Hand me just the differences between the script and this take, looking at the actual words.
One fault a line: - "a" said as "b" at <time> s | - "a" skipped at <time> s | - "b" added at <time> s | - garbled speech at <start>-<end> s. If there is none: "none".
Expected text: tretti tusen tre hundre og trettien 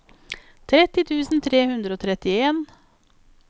none